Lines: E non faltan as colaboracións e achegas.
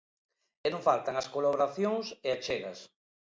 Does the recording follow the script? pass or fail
pass